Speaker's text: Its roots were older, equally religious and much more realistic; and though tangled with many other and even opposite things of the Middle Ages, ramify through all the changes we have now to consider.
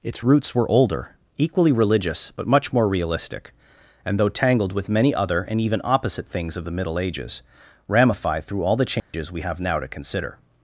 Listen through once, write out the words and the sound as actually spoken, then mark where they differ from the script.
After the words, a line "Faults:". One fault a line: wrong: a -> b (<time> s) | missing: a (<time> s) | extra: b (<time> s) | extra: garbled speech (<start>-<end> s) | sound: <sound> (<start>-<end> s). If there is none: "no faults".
Its roots were older, equally religious but much more realistic; and though tangled with many other and even opposite things of the Middle Ages, ramify through all the changes we have now to consider.
Faults:
wrong: and -> but (2.3 s)
sound: dropout (9.0-9.1 s)